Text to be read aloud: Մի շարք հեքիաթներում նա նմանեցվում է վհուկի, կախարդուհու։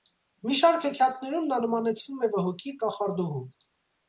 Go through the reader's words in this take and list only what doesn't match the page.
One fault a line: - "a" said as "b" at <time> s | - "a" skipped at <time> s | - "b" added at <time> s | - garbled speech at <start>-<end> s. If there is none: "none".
none